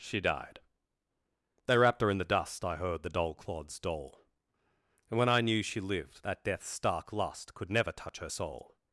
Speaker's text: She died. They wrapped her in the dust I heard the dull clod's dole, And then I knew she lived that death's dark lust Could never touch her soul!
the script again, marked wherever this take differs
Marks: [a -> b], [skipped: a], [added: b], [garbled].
She died. They wrapped her in the dust I heard the dull clod's dole, And [then -> when] I knew she lived that death's [dark -> stark] lust Could never touch her soul!